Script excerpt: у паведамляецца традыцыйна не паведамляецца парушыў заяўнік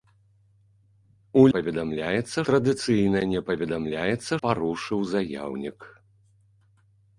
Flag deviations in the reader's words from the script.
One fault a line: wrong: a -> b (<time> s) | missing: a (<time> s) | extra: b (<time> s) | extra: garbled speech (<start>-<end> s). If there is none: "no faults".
no faults